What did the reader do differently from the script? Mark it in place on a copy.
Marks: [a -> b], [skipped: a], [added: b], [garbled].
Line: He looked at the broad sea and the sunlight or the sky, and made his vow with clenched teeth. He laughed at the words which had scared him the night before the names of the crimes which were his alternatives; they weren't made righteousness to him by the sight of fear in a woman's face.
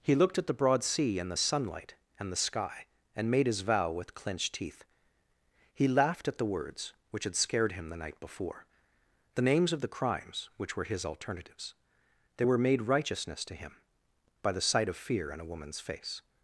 He looked at the broad sea and the sunlight [or -> and] the sky, and made his vow with clenched teeth. He laughed at the words which had scared him the night before the names of the crimes which were his alternatives; they [weren't -> were] made righteousness to him by the sight of fear in a woman's face.